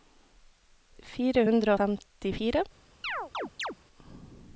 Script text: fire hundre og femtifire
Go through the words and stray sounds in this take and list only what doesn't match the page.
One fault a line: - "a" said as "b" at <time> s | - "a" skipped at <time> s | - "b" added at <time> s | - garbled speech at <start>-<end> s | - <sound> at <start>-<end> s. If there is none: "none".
- "og" skipped at 1.7 s
- chirp at 3.0-3.8 s